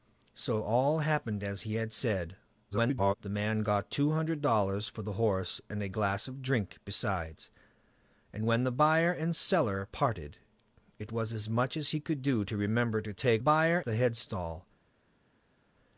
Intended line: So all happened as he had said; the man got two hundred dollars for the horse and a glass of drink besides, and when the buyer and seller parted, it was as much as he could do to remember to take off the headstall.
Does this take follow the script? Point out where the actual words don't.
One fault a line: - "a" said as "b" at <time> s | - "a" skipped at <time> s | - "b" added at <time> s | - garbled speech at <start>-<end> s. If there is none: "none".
- garbled speech at 2.7-3.1 s
- "off" said as "buyer" at 13.4 s